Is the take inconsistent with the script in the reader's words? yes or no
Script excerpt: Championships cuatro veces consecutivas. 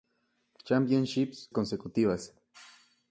yes